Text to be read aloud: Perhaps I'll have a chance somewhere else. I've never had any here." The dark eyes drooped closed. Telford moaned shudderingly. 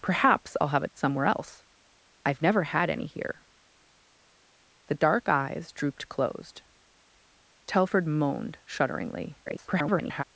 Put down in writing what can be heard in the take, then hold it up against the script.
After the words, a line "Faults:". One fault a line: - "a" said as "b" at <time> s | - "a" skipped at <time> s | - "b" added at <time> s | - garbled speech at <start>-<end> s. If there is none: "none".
Perhaps I'll have a somewhere else. I've never had any here." The dark eyes drooped closed. Telford moaned shudderingly. [garbled]
Faults:
- "chance" skipped at 0.9 s
- garbled speech at 9.5-10.2 s